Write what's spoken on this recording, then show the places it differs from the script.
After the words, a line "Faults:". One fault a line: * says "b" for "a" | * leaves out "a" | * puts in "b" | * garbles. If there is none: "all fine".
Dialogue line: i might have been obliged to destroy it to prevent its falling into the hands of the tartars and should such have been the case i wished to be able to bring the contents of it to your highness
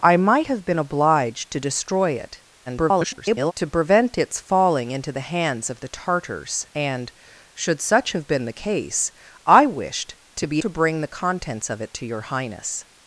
i might have been obliged to destroy it [garbled] to prevent its falling into the hands of the tartars and should such have been the case i wished to be to bring the contents of it to your highness
Faults:
* garbles
* leaves out "able"